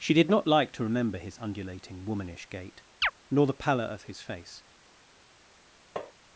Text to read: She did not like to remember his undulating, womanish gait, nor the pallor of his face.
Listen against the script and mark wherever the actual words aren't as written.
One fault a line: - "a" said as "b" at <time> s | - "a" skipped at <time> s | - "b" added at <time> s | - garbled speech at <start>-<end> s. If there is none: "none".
none